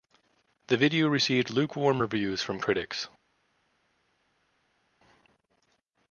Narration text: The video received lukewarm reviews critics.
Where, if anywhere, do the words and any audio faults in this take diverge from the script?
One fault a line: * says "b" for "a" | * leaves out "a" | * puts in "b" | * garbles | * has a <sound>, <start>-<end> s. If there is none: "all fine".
* puts in "from"